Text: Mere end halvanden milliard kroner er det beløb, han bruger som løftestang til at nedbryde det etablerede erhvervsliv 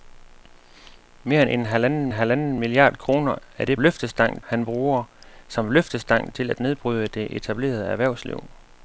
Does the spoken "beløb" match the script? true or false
false